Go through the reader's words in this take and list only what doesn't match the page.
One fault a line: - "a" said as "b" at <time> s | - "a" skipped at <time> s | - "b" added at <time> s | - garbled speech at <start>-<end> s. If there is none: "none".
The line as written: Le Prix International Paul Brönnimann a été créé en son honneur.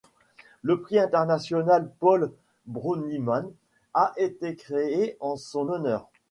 none